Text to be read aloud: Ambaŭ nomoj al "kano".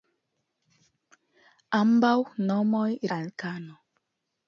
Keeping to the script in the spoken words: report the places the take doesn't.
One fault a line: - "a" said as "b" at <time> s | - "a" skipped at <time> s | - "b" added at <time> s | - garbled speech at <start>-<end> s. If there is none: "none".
none